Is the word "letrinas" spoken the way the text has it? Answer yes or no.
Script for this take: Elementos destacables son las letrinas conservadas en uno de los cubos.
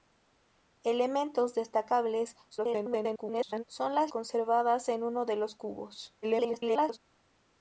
no